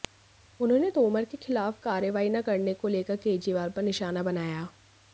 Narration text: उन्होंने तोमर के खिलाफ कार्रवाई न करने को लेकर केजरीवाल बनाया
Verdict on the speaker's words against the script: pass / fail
fail